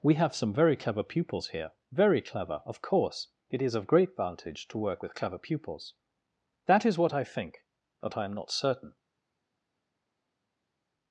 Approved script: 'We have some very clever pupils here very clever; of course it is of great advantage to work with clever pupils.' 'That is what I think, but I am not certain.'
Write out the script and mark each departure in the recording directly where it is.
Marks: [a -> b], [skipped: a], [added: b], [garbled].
'We have some very clever pupils here very clever; of course it is of great advantage to work with clever pupils.' 'That is what I think, but I am not certain.'